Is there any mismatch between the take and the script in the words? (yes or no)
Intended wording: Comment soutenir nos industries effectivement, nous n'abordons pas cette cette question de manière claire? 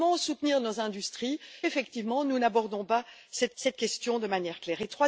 no